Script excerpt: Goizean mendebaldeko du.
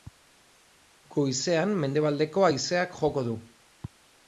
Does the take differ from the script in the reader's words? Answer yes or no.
yes